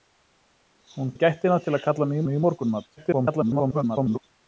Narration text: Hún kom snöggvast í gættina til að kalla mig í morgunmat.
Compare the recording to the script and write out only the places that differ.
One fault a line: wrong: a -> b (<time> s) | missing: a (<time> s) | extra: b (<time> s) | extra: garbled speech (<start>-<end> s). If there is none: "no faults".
missing: kom snöggvast (1.1 s)
extra: mig (2.3 s)
extra: garbled speech (3.0-4.2 s)